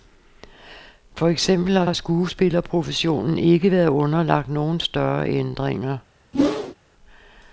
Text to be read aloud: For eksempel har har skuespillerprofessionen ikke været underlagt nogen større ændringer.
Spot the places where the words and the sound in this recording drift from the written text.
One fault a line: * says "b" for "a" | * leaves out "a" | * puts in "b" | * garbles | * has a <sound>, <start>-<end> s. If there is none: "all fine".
* has a whoosh, 6.3-6.7 s